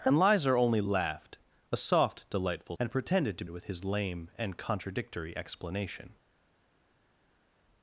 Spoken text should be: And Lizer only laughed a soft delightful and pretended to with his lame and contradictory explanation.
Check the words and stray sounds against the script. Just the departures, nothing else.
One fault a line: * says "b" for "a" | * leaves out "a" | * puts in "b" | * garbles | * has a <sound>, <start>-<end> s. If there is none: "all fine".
all fine